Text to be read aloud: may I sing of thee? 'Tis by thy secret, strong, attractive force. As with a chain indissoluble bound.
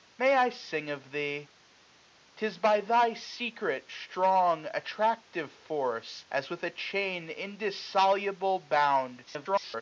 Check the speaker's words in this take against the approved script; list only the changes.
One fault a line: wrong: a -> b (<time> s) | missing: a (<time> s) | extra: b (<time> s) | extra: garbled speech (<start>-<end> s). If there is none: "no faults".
extra: garbled speech (9.3-9.8 s)